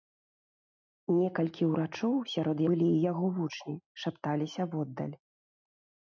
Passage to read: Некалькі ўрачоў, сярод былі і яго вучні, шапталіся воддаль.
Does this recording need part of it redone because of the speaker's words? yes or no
no